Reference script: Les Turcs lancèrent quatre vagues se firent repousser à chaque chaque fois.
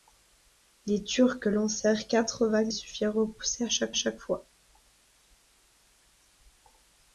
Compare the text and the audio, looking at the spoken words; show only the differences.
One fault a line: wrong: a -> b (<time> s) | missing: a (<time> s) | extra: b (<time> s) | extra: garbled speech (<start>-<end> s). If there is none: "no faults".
no faults